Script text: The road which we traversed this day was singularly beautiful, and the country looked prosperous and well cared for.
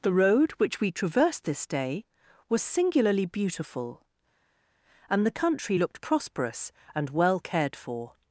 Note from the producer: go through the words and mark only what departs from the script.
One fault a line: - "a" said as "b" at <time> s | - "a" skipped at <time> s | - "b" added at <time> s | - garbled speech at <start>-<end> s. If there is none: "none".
none